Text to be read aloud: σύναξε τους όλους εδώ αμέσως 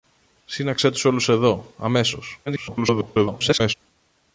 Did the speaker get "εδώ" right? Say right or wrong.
right